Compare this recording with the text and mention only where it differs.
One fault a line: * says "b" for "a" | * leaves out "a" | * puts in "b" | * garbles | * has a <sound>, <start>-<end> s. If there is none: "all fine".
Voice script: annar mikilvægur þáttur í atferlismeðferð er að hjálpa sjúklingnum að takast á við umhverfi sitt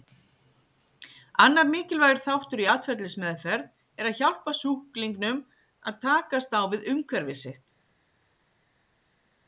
all fine